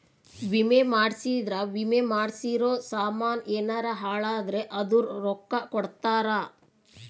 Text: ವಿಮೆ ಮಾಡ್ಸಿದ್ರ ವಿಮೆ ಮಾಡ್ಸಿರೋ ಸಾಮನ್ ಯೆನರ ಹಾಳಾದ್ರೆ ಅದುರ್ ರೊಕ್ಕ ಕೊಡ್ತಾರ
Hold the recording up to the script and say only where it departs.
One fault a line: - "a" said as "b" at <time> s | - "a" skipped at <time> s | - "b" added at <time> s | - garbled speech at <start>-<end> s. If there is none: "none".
none